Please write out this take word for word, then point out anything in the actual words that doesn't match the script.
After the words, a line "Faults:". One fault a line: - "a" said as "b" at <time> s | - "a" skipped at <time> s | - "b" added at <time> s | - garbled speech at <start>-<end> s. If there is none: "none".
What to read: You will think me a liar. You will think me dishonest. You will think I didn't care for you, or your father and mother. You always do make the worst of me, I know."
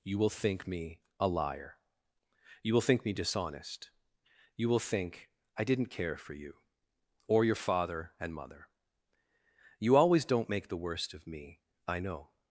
You will think me a liar. You will think me dishonest. You will think I didn't care for you, or your father and mother. You always don't make the worst of me, I know."
Faults:
- "do" said as "don't" at 10.2 s